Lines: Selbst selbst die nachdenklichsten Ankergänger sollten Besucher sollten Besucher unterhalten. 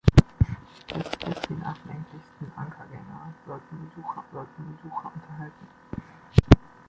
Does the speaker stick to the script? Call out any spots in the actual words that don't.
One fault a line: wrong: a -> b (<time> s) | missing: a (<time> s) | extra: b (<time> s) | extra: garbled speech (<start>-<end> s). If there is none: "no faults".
no faults